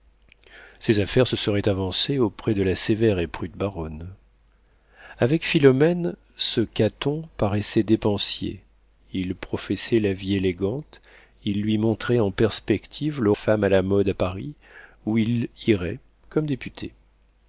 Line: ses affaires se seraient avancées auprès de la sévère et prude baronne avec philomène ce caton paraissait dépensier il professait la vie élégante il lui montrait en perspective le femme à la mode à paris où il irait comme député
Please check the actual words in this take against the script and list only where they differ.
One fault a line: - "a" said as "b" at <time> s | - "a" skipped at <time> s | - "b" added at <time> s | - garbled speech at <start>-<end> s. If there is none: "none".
none